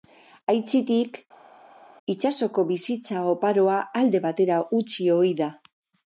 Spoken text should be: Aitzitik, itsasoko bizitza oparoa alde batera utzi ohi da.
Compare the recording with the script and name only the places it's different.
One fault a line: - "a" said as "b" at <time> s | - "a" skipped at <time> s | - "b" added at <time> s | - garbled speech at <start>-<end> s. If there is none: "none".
none